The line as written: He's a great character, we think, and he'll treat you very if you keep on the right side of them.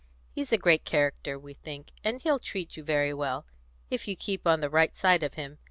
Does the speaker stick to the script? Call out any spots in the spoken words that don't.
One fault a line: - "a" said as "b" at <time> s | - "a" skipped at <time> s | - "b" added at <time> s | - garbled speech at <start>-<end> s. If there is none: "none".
- "well" added at 3.1 s
- "them" said as "him" at 5.3 s